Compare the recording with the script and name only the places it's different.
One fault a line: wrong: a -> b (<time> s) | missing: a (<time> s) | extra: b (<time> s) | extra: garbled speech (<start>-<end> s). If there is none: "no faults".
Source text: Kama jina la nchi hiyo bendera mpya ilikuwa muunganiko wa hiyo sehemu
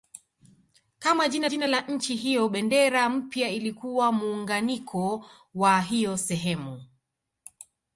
extra: jina (1.5 s)